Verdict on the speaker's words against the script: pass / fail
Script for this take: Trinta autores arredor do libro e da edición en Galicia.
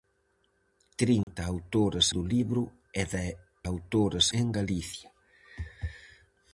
fail